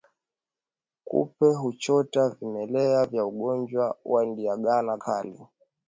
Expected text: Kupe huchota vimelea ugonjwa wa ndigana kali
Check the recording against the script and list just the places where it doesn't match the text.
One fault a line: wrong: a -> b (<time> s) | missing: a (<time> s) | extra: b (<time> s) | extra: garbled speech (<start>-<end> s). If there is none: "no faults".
extra: vya (3.0 s)